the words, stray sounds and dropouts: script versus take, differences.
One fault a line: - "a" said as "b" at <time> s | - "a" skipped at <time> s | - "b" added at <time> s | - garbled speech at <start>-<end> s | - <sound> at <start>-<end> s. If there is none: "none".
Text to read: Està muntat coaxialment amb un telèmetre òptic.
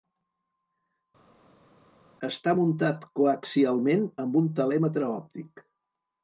none